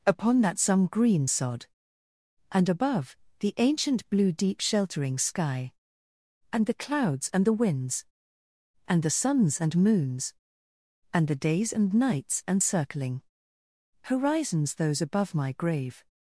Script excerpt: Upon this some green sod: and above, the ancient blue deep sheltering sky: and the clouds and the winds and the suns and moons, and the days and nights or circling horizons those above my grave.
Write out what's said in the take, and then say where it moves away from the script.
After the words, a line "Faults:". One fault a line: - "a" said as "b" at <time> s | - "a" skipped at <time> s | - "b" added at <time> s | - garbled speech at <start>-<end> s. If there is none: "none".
Upon that some green sod: and above, the ancient blue deep sheltering sky: and the clouds and the winds and the suns and moons, and the days and nights and circling horizons those above my grave.
Faults:
- "this" said as "that" at 0.4 s
- "or" said as "and" at 12.5 s